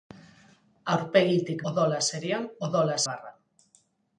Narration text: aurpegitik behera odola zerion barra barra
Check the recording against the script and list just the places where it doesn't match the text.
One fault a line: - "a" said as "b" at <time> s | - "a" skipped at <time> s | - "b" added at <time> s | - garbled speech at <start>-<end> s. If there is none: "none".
- "behera" skipped at 1.6 s
- "barra" said as "odola" at 2.7 s